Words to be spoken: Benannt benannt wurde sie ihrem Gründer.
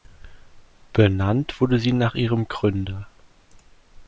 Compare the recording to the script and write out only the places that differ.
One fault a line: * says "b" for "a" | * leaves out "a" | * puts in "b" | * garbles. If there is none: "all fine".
* leaves out "benannt"
* puts in "nach"